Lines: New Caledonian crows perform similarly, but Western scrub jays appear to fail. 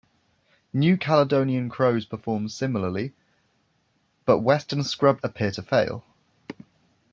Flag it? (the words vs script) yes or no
yes